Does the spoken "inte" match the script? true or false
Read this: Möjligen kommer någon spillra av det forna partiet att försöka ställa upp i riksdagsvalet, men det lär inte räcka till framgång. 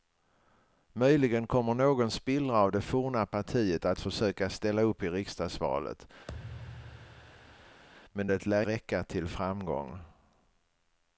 false